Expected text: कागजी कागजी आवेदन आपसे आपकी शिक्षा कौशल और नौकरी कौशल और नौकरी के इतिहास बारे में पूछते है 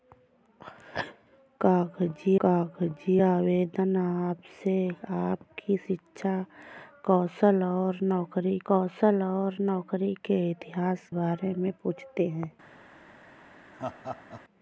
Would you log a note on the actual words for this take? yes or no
no